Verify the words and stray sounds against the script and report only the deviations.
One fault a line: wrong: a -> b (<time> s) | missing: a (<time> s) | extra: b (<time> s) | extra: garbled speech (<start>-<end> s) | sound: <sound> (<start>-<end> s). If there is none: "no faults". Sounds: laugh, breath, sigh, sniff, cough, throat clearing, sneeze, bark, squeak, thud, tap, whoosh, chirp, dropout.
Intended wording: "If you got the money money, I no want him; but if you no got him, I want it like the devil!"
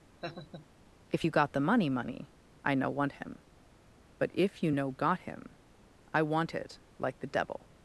sound: laugh (0.2-0.7 s)